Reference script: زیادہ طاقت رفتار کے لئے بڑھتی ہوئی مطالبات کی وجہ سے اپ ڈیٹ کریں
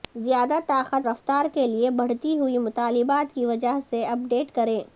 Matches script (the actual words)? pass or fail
pass